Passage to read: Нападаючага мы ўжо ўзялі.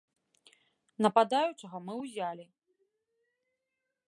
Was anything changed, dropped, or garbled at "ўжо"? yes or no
yes